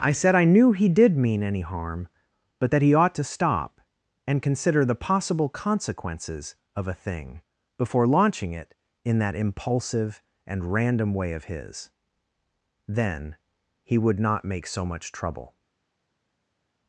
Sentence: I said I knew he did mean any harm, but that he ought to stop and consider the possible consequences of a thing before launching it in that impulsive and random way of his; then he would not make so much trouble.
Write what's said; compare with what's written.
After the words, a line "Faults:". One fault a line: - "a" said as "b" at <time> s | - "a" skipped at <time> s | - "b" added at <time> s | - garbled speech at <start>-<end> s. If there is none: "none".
I said I knew he did mean any harm, but that he ought to stop and consider the possible consequences of a thing before launching it in that impulsive and random way of his; then he would not make so much trouble.
Faults:
none